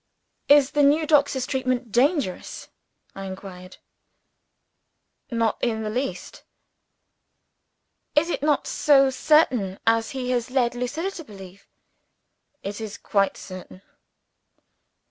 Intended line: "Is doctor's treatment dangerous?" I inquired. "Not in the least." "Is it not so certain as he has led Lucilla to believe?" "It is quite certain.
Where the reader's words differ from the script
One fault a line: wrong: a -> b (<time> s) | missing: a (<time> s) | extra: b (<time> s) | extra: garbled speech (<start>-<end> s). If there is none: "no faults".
extra: the new (0.7 s)